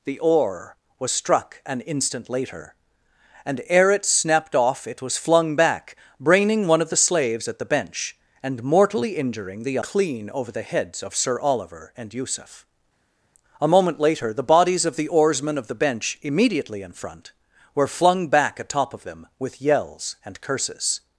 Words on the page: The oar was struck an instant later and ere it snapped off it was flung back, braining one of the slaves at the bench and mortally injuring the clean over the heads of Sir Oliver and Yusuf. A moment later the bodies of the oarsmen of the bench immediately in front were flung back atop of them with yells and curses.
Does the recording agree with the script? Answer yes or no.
yes